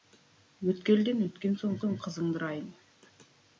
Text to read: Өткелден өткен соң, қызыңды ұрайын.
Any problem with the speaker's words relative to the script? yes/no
yes